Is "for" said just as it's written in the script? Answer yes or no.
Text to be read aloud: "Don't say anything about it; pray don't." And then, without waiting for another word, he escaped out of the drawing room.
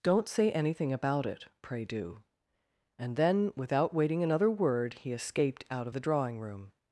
no